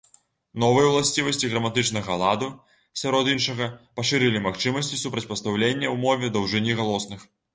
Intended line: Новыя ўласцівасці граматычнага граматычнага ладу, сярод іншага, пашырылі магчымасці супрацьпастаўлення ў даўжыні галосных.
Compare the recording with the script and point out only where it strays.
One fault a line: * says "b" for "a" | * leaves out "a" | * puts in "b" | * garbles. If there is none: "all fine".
* leaves out "граматычнага"
* puts in "мове"